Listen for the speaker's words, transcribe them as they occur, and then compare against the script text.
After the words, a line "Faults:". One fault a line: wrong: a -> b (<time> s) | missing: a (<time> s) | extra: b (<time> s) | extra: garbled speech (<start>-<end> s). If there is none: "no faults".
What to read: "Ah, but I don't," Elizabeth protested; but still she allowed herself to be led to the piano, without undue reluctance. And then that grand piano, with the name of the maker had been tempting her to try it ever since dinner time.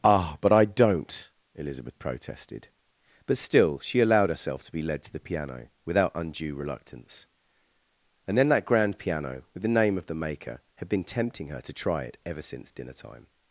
"Ah, but I don't," Elizabeth protested; but still she allowed herself to be led to the piano, without undue reluctance. And then that grand piano, with the name of the maker had been tempting her to try it ever since dinner time.
Faults:
no faults